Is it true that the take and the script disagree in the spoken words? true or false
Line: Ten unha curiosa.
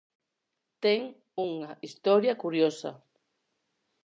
true